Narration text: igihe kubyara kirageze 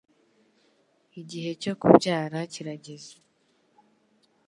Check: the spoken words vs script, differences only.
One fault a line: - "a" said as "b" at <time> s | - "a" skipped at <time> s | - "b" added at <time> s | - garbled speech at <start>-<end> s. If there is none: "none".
- "cyo" added at 1.6 s